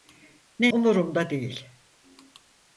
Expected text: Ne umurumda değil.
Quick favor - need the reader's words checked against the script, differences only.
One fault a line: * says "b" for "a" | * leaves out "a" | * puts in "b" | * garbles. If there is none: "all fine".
all fine